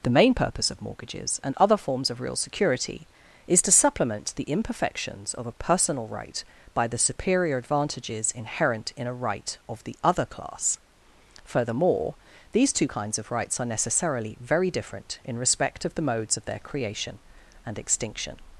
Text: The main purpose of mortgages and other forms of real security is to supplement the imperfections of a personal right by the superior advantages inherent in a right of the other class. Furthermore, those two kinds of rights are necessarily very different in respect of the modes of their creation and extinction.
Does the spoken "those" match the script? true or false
false